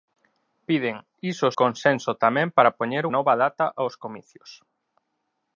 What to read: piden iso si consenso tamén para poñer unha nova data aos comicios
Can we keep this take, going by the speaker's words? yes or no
no